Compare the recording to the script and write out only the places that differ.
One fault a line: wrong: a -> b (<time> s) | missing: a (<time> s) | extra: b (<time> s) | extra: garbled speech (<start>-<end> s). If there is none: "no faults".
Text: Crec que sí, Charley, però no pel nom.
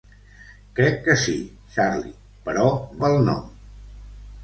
missing: no (2.6 s)